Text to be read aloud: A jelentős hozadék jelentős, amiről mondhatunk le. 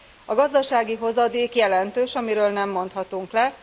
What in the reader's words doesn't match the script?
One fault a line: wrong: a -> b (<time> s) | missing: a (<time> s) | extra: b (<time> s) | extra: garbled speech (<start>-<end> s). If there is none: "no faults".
wrong: jelentős -> gazdasági (0.3 s)
extra: nem (2.5 s)